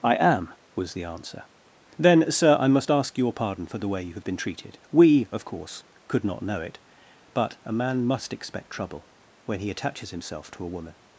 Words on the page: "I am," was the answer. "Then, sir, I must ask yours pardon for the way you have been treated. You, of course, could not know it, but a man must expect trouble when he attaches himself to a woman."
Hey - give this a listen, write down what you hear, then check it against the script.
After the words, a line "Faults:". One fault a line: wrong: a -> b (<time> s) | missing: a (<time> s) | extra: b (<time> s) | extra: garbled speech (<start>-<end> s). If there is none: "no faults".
"I am," was the answer. "Then, sir, I must ask your pardon for the way you have been treated. We, of course, could not know it, but a man must expect trouble when he attaches himself to a woman."
Faults:
wrong: yours -> your (3.2 s)
wrong: You -> We (4.9 s)